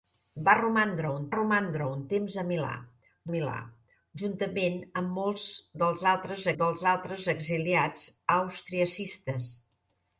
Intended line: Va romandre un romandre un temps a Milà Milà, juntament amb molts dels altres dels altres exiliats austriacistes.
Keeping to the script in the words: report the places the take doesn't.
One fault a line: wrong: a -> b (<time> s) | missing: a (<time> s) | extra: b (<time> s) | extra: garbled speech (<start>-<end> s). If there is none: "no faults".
no faults